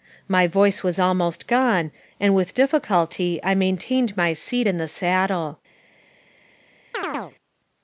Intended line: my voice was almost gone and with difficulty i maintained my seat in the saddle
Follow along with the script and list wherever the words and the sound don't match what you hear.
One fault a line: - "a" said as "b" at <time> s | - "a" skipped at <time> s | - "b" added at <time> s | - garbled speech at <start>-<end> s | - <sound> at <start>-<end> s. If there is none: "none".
- chirp at 6.9-7.4 s